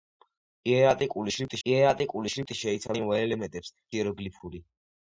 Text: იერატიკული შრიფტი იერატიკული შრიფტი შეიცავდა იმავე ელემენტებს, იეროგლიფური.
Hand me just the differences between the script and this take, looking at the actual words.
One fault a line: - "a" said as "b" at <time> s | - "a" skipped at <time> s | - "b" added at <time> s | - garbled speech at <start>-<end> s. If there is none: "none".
none